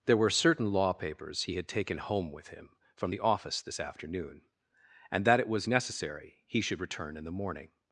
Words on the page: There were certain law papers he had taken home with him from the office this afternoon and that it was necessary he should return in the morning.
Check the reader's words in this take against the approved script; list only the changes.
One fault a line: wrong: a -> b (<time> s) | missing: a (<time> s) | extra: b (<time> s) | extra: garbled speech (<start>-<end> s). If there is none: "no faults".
no faults